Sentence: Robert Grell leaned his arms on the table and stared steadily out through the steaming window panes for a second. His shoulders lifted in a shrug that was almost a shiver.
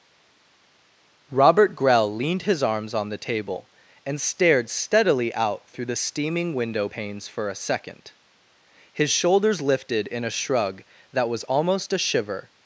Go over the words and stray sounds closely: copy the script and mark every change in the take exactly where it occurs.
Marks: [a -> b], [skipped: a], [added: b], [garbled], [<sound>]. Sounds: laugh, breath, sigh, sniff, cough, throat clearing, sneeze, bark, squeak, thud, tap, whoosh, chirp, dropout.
Robert Grell leaned his arms on the table and stared steadily out through the steaming window panes for a second. His shoulders lifted in a shrug that was almost a shiver.